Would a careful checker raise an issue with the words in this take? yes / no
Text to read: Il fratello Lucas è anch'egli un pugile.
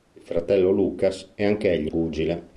yes